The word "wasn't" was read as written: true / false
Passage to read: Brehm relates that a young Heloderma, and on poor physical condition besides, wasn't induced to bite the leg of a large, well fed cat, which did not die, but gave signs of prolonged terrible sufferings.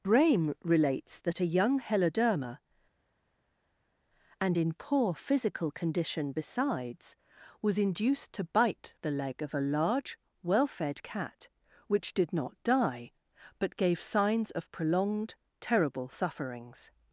false